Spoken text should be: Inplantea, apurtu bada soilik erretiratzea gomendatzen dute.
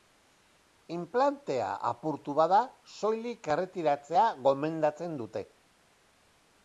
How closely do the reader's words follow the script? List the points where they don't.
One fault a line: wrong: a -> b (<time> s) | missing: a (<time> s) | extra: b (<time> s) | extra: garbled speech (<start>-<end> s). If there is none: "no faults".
no faults